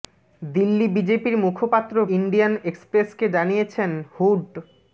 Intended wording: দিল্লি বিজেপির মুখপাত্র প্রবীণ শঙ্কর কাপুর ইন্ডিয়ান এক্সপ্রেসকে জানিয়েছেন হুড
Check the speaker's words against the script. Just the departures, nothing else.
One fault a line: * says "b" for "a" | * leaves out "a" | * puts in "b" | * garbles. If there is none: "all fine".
* leaves out "প্রবীণ শঙ্কর কাপুর"